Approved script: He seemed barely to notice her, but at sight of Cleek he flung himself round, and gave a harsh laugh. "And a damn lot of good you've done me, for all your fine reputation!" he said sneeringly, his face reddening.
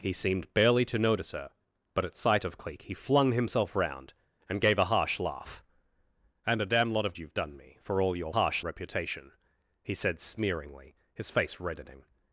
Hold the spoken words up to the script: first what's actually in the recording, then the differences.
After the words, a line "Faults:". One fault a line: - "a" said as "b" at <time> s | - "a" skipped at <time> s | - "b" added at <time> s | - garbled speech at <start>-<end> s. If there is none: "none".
He seemed barely to notice her, but at sight of Cleek he flung himself round, and gave a harsh laugh. "And a damn lot of you've done me, for all your harsh reputation!" he said sneeringly, his face reddening.
Faults:
- "good" skipped at 7.2 s
- "fine" said as "harsh" at 8.4 s